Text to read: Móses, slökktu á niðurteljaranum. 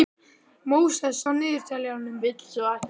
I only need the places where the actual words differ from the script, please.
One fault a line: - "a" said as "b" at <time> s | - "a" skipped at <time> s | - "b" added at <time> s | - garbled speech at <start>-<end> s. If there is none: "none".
- "slökktu" skipped at 1.2 s